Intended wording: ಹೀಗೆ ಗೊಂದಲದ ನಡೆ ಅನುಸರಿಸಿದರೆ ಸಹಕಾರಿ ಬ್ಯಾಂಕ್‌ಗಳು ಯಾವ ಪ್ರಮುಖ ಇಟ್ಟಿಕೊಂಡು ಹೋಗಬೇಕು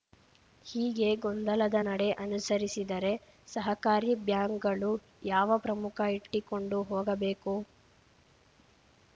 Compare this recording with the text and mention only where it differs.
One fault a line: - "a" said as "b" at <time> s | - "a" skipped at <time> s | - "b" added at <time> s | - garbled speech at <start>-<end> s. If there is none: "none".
none